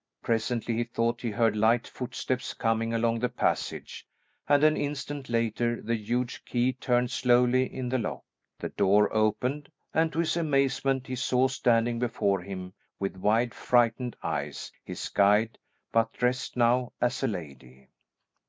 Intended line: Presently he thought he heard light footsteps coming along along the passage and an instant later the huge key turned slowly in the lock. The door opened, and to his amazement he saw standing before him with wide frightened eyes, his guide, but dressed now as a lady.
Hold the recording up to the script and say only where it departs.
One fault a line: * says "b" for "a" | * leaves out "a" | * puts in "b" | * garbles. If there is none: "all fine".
* leaves out "along"